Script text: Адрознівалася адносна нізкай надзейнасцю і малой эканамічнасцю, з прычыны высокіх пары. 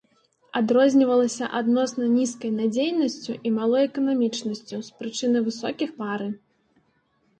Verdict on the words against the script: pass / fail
pass